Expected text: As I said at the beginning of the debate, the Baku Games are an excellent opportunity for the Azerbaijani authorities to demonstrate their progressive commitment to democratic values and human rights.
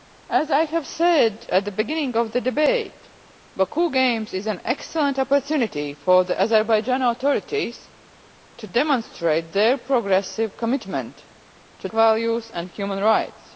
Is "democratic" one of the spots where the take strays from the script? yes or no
yes